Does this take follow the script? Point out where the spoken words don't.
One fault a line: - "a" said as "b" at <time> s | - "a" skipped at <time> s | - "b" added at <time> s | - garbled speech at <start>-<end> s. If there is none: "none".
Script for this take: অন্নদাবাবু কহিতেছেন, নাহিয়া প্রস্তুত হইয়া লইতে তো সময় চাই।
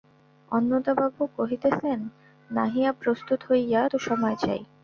- "লইতে" skipped at 3.8 s